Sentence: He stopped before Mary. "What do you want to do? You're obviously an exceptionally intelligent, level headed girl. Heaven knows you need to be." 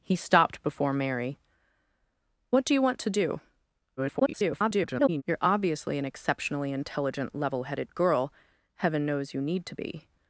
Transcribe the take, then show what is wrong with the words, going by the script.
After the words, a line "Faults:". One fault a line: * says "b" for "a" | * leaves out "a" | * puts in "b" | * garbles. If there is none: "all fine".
He stopped before Mary. "What do you want to do? [garbled] You're obviously an exceptionally intelligent, level headed girl. Heaven knows you need to be."
Faults:
* garbles